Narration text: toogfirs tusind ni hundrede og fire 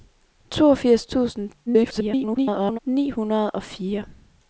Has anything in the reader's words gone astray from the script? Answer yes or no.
yes